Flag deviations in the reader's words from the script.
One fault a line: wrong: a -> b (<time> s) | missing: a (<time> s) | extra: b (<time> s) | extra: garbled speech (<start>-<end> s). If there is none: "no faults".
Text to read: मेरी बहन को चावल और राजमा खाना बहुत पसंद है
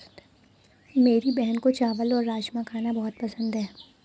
no faults